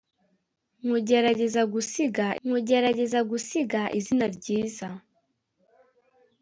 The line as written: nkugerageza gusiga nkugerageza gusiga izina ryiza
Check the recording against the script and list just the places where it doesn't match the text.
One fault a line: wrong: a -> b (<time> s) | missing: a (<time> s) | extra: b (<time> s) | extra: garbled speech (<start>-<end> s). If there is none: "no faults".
no faults